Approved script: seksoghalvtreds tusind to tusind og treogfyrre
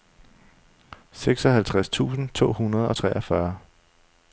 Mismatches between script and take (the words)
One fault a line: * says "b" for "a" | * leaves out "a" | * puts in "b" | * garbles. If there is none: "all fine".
* says "hundrede" for "tusind"